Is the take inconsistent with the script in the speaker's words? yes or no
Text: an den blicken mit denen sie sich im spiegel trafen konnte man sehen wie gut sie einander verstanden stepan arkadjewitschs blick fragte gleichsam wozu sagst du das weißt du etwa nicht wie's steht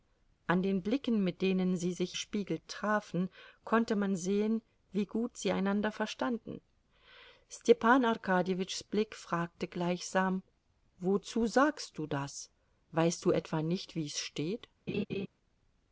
yes